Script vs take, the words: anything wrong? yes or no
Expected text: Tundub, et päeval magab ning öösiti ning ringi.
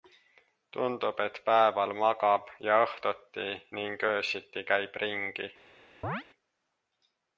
yes